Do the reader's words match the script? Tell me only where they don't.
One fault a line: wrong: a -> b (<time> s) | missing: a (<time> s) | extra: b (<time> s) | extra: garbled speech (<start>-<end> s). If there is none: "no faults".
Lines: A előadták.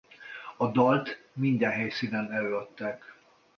extra: dalt minden helyszínen (0.7 s)